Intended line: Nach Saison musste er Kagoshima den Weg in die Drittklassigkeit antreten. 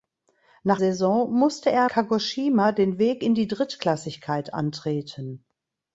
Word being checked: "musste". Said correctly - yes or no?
yes